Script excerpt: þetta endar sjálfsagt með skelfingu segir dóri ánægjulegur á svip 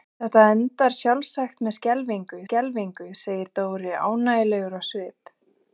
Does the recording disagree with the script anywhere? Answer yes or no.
yes